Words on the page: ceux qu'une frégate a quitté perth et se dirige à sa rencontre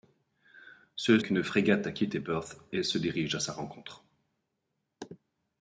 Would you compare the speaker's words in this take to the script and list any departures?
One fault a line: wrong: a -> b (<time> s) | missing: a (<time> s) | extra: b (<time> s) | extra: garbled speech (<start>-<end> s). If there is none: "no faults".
no faults